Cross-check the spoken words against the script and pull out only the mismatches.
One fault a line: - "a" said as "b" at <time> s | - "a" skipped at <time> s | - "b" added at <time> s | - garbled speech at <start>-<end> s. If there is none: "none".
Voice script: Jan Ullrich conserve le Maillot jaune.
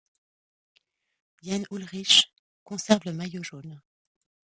none